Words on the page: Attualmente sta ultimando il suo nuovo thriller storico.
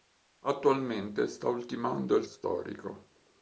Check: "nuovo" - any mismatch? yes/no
yes